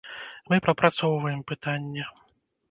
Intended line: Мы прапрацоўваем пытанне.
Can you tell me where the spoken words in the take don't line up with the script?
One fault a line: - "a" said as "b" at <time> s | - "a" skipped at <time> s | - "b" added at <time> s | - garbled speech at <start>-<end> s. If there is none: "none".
none